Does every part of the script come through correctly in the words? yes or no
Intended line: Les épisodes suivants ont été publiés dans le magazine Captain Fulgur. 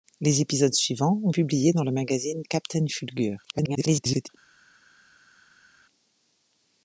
no